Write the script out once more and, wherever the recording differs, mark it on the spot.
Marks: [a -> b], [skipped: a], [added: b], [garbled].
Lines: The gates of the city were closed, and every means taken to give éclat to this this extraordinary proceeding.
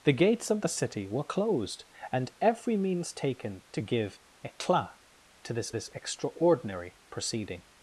The gates of the city were closed, and every means taken to give éclat to this this extraordinary proceeding.